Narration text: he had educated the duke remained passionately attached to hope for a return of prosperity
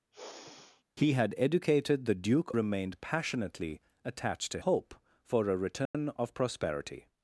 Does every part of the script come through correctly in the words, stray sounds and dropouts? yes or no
no